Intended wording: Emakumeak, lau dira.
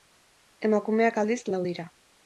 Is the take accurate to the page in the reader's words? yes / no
no